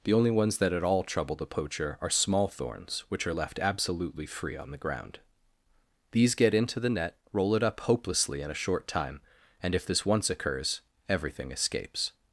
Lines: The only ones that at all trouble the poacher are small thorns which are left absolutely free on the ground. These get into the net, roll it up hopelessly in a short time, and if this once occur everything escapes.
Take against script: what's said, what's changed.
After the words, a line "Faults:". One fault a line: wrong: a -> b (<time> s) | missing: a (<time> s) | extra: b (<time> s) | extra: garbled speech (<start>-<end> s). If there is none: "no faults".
The only ones that at all trouble the poacher are small thorns which are left absolutely free on the ground. These get into the net, roll it up hopelessly in a short time, and if this once occurs everything escapes.
Faults:
wrong: occur -> occurs (10.3 s)